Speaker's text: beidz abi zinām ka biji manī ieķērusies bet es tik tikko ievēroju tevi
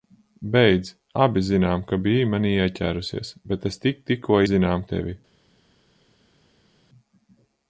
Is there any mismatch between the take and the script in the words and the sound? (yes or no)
yes